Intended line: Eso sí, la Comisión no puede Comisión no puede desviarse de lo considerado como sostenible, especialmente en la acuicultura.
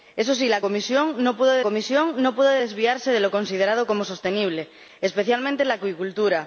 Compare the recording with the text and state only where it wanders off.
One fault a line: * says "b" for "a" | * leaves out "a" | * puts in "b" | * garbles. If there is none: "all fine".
all fine